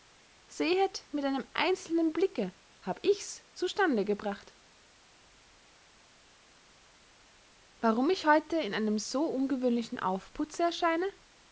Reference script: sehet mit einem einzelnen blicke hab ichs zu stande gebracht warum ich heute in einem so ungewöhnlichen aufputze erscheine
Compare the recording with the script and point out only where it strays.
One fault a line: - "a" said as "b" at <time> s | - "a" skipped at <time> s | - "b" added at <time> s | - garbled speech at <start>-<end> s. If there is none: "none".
none